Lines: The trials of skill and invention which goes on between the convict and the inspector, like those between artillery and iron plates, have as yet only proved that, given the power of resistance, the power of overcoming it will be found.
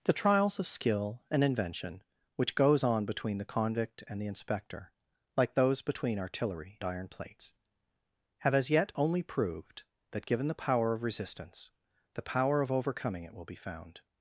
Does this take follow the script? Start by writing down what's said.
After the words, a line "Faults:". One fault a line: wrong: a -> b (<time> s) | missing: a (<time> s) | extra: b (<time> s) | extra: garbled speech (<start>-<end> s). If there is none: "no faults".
The trials of skill and invention which goes on between the convict and the inspector, like those between artillery iron plates, have as yet only proved that, given the power of resistance, the power of overcoming it will be found.
Faults:
missing: and (6.8 s)